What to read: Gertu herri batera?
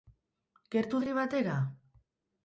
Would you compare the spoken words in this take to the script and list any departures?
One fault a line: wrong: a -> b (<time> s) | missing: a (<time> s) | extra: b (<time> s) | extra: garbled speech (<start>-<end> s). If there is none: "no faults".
no faults